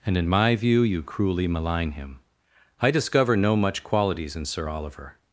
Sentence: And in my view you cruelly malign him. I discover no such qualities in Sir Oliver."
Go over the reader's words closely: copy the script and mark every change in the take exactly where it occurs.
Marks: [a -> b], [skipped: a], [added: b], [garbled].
And in my view you cruelly malign him. I discover no [such -> much] qualities in Sir Oliver."